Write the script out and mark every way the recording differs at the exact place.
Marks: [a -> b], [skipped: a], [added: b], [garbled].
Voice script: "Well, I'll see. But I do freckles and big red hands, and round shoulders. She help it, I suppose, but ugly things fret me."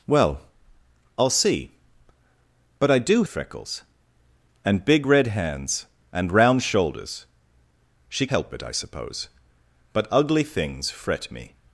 "Well, I'll see. But I do freckles and big red hands, and round shoulders. She help it, I suppose, but ugly things fret me."